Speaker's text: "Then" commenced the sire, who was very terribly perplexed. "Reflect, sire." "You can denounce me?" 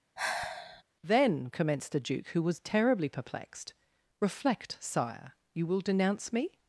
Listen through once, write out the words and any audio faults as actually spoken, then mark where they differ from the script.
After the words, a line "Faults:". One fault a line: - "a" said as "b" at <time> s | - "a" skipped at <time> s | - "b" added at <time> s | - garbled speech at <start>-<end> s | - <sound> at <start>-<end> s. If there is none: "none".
"Then" commenced the duke, who was terribly perplexed. "Reflect, sire." "You will denounce me?"
Faults:
- sigh at 0.2-0.8 s
- "sire" said as "duke" at 2.0 s
- "very" skipped at 2.6 s
- "can" said as "will" at 5.7 s